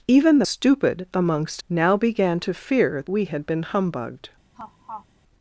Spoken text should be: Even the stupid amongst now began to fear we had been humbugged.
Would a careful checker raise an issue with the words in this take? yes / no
no